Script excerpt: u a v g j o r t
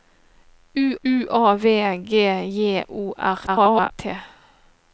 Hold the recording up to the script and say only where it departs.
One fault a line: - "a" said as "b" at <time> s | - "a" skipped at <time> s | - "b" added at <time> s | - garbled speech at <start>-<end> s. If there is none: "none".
- "u" added at 1.0 s
- garbled speech at 3.5-3.9 s